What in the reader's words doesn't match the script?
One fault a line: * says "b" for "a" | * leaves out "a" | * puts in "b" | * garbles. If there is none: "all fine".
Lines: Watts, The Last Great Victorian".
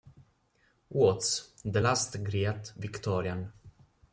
all fine